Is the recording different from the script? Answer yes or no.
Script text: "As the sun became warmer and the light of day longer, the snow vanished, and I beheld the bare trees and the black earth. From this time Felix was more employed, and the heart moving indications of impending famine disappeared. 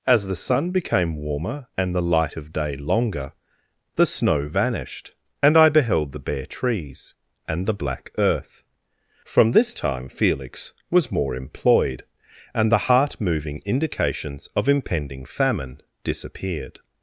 no